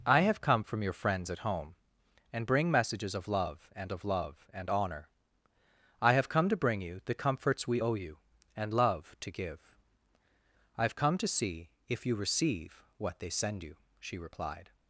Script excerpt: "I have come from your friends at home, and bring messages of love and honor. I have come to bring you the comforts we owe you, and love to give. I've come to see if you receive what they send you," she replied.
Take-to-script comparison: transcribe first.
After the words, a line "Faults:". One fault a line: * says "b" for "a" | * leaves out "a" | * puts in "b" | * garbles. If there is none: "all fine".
"I have come from your friends at home, and bring messages of love and of love and honor. I have come to bring you the comforts we owe you, and love to give. I've come to see if you receive what they send you," she replied.
Faults:
* puts in "of love and"